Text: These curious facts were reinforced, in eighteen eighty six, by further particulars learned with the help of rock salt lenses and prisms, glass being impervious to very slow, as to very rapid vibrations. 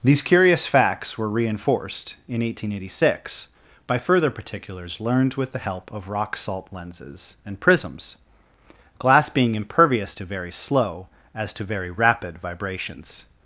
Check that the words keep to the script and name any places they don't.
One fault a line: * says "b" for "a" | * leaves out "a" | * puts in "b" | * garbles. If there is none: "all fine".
all fine